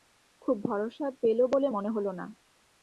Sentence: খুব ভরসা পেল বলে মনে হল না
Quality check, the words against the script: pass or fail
pass